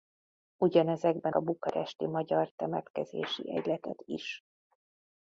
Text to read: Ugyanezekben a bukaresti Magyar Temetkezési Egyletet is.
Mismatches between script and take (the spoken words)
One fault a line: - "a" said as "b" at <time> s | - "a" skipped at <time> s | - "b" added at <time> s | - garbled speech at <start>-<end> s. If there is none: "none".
none